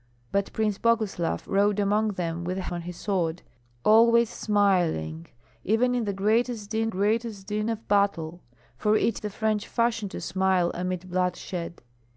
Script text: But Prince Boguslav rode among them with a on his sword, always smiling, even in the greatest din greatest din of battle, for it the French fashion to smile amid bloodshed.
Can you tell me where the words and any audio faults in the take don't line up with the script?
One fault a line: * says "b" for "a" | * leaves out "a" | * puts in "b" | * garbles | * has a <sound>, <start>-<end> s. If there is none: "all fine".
all fine